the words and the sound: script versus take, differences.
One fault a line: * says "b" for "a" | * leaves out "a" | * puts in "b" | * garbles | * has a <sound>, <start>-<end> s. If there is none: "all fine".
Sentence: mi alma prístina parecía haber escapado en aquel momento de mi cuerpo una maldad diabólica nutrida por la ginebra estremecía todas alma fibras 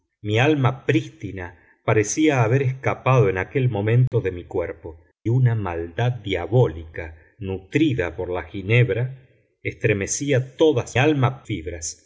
* has a dropout, 4.1-4.1 s